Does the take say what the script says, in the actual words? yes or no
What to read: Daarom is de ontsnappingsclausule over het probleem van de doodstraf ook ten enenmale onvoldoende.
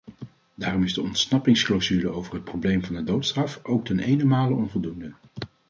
yes